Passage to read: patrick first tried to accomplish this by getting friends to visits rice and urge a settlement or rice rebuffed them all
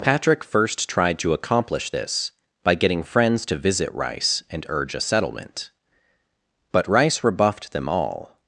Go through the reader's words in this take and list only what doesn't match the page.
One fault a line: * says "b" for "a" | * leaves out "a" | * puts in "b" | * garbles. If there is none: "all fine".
* says "visit" for "visits"
* says "but" for "or"